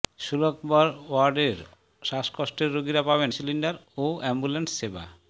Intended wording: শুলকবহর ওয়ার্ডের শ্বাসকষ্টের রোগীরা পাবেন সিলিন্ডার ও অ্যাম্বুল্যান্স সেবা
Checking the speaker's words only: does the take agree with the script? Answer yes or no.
yes